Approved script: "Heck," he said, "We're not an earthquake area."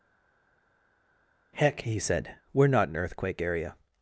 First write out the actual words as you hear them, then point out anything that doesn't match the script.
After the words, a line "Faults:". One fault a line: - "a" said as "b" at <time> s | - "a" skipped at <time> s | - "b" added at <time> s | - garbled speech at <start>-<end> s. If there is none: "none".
"Heck," he said, "We're not an earthquake area."
Faults:
none